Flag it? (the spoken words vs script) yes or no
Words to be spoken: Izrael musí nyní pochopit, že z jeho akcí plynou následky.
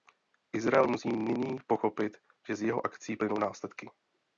no